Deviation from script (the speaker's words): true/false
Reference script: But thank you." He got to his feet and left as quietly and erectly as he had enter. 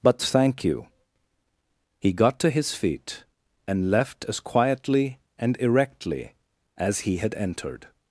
true